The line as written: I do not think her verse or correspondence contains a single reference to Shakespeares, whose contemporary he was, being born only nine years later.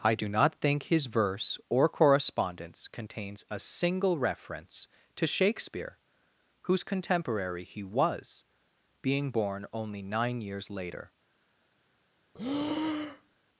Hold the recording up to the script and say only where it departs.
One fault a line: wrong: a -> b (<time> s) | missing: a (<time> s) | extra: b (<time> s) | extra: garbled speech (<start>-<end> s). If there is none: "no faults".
wrong: her -> his (0.8 s)
wrong: Shakespeares -> Shakespeare (5.3 s)